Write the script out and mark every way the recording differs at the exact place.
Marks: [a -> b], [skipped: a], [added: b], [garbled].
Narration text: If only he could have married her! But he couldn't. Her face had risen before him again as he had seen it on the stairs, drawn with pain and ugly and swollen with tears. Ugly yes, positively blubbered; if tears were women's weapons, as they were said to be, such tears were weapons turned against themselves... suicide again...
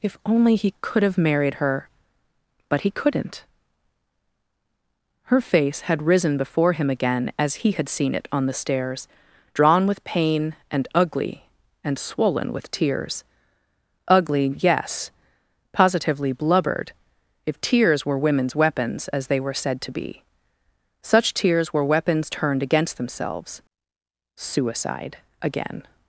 If only he could have married her! But he couldn't. Her face had risen before him again as he had seen it on the stairs, drawn with pain and ugly and swollen with tears. Ugly yes, positively blubbered; if tears were women's weapons, as they were said to be, such tears were weapons turned against themselves... suicide again...